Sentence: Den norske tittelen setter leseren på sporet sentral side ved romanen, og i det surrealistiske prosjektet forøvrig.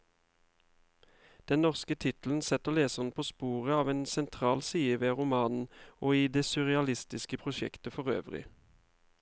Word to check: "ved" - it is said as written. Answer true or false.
true